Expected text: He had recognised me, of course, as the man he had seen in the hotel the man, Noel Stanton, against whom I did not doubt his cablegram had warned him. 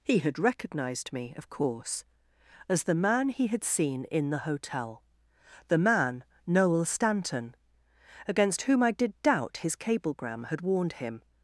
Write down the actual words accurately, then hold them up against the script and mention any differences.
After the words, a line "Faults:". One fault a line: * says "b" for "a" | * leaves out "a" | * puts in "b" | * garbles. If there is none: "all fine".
He had recognised me, of course, as the man he had seen in the hotel the man, Noel Stanton, against whom I did doubt his cablegram had warned him.
Faults:
* leaves out "not"